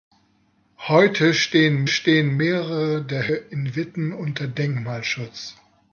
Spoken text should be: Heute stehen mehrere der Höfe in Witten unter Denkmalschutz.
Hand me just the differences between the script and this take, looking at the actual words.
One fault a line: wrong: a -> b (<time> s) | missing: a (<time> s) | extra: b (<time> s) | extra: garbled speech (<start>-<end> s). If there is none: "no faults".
extra: stehen (1.9 s)
missing: Höfe (3.3 s)